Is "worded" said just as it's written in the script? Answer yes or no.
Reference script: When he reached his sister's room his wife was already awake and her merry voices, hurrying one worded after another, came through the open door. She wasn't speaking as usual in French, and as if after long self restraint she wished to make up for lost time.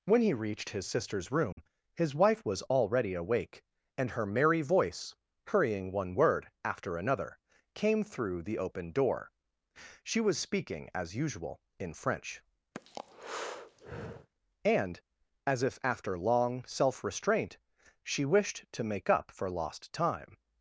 no